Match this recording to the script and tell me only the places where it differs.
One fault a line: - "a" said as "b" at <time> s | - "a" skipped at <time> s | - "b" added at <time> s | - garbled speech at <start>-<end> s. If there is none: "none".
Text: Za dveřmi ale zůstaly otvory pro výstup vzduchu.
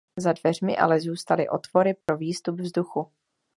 none